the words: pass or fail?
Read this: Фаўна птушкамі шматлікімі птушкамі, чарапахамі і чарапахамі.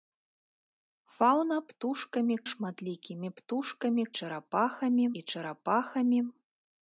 pass